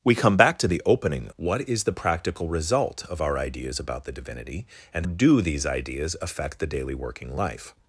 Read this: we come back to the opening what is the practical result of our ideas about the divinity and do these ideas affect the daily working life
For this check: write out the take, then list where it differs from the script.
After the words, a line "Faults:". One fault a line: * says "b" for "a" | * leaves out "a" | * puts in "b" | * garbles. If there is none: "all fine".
we come back to the opening what is the practical result of our ideas about the divinity and do these ideas affect the daily working life
Faults:
all fine